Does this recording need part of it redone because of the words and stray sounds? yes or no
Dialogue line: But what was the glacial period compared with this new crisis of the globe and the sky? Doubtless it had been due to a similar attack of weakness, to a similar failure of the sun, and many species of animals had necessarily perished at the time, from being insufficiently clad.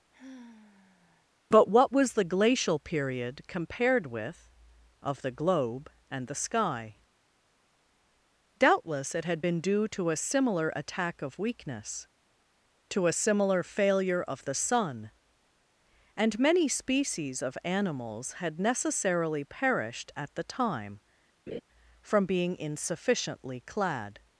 yes